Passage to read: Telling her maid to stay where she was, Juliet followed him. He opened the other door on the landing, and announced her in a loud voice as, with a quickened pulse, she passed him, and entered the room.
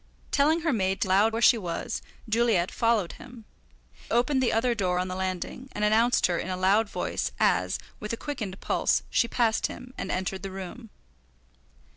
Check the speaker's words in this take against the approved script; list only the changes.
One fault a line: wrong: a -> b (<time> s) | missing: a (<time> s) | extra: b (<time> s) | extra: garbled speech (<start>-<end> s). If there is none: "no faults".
wrong: stay -> loud (1.0 s)
missing: He (3.5 s)